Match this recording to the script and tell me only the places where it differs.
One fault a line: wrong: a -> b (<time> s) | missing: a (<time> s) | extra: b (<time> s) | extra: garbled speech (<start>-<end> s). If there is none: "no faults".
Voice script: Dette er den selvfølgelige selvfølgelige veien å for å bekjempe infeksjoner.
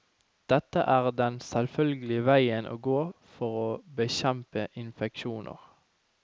missing: selvfølgelige (2.2 s)
extra: gå (2.9 s)